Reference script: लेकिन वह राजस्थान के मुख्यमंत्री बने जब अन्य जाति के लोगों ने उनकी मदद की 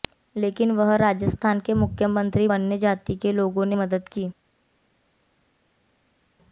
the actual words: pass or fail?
fail